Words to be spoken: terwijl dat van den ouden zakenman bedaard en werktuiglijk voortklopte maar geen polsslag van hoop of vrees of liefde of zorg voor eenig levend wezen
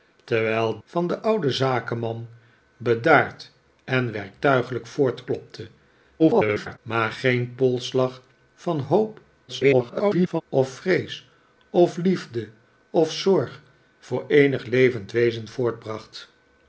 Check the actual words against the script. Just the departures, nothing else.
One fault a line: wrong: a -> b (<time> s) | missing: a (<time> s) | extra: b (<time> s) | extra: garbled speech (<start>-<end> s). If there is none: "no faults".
missing: dat (0.8 s)
extra: garbled speech (6.2-6.8 s)
extra: garbled speech (9.5-10.4 s)